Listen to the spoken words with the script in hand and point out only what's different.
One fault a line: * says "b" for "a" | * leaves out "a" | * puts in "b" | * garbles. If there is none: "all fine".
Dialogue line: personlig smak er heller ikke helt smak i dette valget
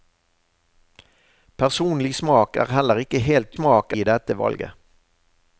all fine